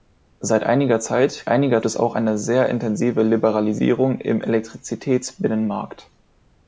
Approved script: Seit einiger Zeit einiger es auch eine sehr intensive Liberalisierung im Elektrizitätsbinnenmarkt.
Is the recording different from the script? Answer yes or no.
no